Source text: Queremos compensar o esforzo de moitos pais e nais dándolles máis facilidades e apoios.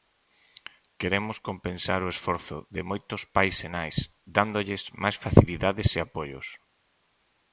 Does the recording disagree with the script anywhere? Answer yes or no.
no